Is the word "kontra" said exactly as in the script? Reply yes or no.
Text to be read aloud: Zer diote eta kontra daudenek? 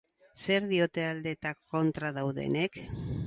yes